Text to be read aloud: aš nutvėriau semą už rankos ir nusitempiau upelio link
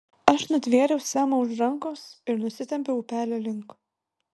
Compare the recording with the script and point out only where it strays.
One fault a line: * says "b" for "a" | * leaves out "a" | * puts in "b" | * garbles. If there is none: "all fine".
all fine